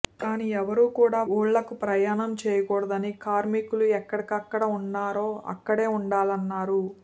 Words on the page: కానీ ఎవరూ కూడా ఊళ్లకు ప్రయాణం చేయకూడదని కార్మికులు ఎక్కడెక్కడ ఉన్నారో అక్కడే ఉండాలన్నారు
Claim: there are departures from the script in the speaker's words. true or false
false